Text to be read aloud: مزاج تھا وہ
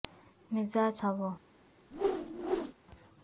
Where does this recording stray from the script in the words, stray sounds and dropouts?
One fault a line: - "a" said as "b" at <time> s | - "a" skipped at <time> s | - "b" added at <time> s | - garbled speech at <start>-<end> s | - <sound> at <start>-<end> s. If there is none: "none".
- whoosh at 1.9-2.7 s